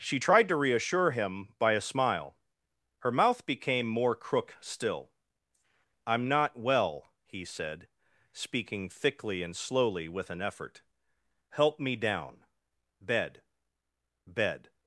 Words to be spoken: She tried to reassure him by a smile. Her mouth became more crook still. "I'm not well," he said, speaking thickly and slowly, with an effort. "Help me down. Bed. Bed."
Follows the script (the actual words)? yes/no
yes